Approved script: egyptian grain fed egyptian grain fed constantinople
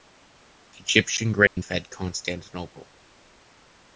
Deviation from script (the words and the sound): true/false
true